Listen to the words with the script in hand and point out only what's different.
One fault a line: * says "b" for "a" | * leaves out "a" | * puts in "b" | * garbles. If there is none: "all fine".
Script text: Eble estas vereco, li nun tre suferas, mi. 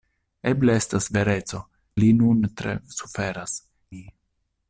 all fine